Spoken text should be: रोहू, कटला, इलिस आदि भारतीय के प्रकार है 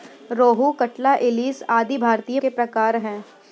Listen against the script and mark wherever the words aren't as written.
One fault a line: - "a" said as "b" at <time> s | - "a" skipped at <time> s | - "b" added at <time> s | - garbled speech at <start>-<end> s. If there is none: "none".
none